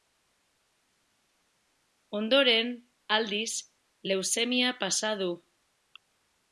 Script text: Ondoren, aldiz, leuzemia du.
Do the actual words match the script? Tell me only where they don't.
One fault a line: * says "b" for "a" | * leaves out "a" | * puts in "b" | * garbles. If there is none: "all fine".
* puts in "pasa"